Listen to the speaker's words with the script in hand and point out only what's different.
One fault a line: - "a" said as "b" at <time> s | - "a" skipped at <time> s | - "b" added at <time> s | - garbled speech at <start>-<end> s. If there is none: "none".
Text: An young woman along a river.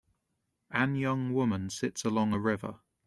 - "sits" added at 1.7 s